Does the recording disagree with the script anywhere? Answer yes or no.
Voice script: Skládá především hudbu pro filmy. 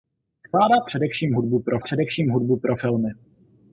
yes